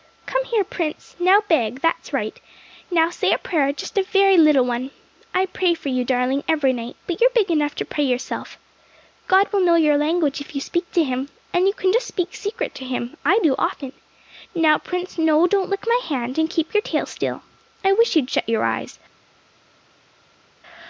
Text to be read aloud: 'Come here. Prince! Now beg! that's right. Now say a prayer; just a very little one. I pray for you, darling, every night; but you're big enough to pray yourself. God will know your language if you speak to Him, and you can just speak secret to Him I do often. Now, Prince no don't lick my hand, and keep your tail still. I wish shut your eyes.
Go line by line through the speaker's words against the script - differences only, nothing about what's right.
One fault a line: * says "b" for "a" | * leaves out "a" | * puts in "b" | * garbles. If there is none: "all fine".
* puts in "you'd"